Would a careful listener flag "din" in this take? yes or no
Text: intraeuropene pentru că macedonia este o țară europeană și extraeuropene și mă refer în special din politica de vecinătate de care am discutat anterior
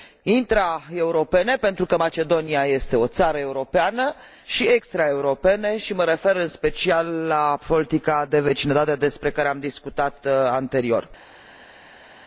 yes